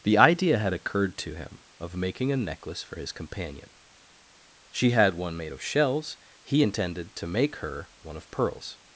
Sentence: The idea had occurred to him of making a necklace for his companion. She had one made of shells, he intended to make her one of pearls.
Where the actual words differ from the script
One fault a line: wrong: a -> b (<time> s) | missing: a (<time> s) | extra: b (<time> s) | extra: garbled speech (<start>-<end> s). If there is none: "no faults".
no faults